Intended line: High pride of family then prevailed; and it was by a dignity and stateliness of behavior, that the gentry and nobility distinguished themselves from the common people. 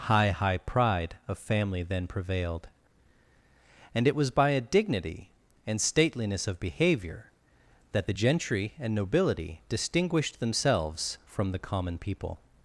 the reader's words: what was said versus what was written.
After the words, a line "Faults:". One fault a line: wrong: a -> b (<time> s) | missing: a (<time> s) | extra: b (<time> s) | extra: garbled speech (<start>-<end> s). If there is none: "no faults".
High high pride of family then prevailed; and it was by a dignity and stateliness of behavior, that the gentry and nobility distinguished themselves from the common people.
Faults:
extra: high (0.3 s)